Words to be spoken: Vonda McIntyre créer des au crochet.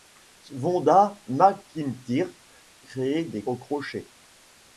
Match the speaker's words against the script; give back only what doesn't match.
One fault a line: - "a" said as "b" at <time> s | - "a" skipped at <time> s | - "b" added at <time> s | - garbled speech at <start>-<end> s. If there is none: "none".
none